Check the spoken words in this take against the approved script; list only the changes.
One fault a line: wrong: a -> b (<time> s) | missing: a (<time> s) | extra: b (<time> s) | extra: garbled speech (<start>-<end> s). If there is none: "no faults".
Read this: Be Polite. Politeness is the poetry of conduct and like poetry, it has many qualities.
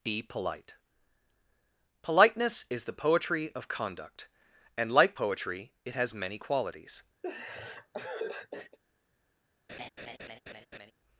no faults